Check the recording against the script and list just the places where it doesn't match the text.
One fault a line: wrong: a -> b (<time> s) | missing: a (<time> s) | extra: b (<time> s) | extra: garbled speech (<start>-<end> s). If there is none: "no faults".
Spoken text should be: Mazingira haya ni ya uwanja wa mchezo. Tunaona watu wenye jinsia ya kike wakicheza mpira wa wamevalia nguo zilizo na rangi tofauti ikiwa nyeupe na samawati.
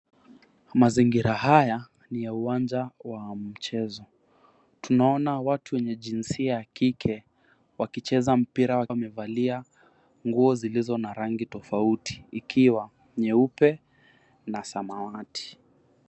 no faults